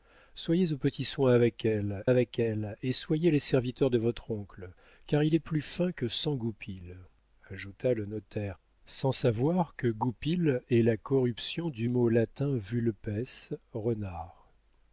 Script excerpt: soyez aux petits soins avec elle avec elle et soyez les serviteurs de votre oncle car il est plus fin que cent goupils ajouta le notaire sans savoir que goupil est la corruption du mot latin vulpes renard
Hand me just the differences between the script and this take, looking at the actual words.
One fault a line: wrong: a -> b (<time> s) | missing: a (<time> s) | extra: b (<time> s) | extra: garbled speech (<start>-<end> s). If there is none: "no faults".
no faults